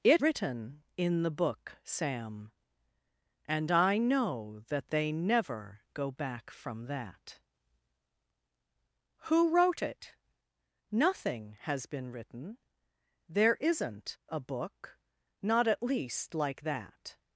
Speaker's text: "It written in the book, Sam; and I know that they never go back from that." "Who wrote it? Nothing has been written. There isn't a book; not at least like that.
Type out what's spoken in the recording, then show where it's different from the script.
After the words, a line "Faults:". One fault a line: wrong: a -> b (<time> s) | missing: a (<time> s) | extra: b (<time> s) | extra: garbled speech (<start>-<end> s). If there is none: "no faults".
"It written in the book, Sam; and I know that they never go back from that." "Who wrote it? Nothing has been written. There isn't a book; not at least like that.
Faults:
no faults